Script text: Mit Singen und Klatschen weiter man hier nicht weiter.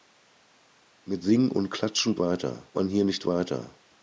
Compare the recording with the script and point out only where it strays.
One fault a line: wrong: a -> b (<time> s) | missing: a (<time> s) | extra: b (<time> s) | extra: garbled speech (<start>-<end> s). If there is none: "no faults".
no faults